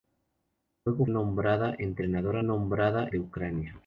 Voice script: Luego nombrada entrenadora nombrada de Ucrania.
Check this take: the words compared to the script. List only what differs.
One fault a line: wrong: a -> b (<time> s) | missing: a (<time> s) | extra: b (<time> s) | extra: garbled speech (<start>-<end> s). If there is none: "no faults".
no faults